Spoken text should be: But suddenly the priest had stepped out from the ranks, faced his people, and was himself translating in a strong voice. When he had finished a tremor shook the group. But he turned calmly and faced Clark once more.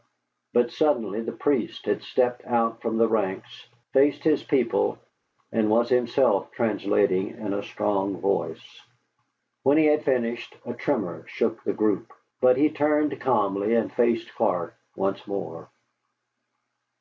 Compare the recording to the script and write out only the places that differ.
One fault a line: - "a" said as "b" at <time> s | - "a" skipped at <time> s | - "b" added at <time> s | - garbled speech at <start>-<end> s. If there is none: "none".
none